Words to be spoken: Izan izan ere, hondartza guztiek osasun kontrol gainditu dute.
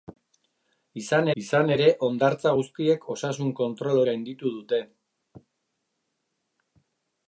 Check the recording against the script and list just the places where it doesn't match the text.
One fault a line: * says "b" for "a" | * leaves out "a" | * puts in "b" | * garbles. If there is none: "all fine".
all fine